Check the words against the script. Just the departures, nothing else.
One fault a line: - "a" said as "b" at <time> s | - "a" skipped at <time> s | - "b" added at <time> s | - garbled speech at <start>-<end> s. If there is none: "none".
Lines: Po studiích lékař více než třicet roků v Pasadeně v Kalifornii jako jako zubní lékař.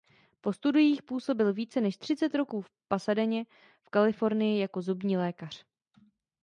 - "lékař" said as "působil" at 1.0 s
- "jako" skipped at 4.8 s